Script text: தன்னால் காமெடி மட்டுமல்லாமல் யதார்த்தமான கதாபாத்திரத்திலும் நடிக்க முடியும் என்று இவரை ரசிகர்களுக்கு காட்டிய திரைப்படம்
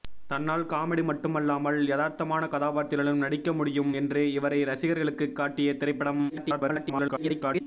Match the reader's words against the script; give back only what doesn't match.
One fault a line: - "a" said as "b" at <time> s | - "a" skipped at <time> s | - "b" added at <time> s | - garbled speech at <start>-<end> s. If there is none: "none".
- garbled speech at 6.3-7.6 s